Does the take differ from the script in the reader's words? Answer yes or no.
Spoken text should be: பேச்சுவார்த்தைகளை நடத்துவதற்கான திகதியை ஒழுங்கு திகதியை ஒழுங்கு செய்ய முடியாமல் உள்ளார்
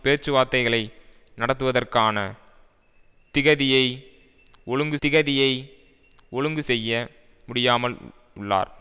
no